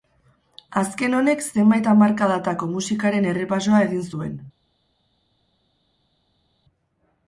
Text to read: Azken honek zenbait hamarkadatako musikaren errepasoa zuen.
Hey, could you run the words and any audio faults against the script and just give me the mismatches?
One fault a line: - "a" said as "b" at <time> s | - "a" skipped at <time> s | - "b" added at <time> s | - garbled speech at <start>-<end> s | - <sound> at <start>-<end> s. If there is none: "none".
- "egin" added at 3.9 s